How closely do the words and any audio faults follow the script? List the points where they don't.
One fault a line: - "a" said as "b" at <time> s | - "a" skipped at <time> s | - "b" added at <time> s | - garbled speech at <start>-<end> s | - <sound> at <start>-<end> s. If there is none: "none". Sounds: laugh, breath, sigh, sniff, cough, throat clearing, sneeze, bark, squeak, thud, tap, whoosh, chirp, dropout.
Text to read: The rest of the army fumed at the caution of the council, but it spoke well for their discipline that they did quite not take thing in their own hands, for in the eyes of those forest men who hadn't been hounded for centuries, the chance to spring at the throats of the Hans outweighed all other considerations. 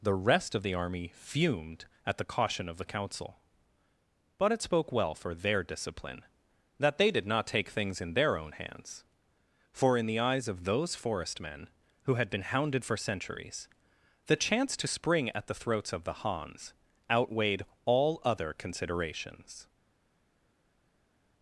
- "quite" skipped at 7.3 s
- "thing" said as "things" at 7.7 s
- "hadn't" said as "had" at 12.1 s